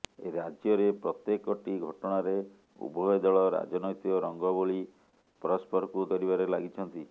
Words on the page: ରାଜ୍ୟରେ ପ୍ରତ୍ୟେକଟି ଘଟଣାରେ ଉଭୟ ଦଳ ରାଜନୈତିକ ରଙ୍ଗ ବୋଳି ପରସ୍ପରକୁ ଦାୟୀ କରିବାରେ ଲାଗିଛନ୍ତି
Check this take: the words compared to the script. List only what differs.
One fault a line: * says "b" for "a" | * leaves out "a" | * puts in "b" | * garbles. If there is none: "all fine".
* leaves out "ଦାୟୀ"